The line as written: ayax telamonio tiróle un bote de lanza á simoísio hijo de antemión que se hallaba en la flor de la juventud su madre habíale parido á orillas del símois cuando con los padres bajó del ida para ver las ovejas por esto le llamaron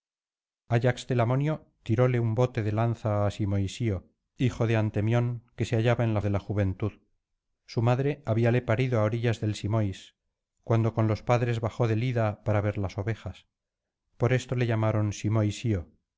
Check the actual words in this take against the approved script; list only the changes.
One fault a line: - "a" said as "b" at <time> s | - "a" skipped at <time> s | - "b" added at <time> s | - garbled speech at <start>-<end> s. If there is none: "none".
- "flor" skipped at 6.2 s